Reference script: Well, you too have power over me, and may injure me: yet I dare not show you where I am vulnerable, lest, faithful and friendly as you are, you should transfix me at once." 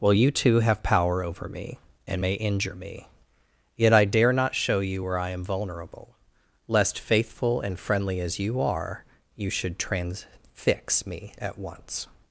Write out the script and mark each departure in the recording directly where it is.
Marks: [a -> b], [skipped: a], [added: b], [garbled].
Well, you too have power over me, and may injure me: yet I dare not show you where I am vulnerable, lest, faithful and friendly as you are, you should transfix me at once."